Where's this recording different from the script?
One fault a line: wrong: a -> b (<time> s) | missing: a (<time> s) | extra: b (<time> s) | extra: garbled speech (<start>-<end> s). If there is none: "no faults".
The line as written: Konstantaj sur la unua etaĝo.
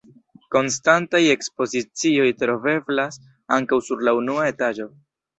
extra: ekspozicioj troveblas ankaŭ (1.3 s)